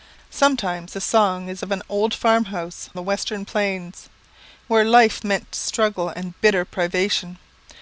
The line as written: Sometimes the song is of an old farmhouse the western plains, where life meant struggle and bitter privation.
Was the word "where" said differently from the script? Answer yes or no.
no